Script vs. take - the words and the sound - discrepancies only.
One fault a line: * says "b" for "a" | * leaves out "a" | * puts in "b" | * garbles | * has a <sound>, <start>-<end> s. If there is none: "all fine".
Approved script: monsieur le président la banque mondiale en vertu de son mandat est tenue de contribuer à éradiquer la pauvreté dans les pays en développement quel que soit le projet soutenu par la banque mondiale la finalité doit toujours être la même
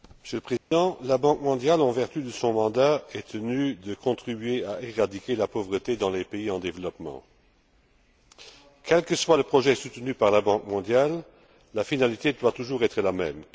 * has a dropout, 0.6-0.7 s